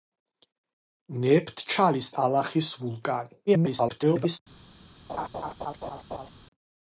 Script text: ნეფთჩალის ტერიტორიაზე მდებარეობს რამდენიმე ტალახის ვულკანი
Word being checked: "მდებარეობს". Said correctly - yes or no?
no